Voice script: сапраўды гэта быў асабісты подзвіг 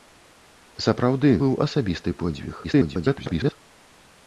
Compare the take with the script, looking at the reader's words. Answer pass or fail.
fail